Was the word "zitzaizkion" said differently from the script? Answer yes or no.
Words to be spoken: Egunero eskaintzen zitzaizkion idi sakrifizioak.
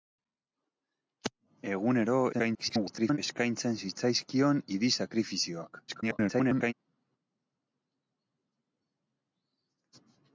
no